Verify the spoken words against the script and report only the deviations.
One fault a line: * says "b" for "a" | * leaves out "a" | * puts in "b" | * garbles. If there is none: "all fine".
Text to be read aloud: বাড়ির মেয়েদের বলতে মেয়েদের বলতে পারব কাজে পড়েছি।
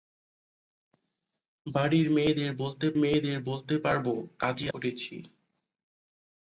all fine